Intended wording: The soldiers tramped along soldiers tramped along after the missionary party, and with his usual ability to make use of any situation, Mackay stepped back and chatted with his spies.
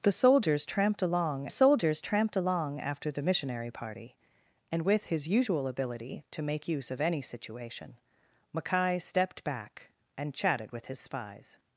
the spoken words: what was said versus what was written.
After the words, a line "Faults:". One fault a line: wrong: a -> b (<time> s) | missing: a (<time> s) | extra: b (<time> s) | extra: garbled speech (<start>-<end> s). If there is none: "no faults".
The soldiers tramped along soldiers tramped along after the missionary party, and with his usual ability to make use of any situation, Mackay stepped back and chatted with his spies.
Faults:
no faults